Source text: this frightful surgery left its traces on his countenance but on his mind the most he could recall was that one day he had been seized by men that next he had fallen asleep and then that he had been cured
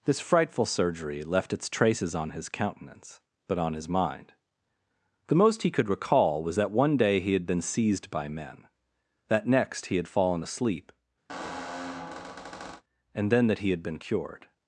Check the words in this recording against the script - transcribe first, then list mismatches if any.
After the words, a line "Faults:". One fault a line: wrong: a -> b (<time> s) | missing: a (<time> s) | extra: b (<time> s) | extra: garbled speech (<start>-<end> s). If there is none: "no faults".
this frightful surgery left its traces on his countenance but on his mind the most he could recall was that one day he had been seized by men that next he had fallen asleep and then that he had been cured
Faults:
no faults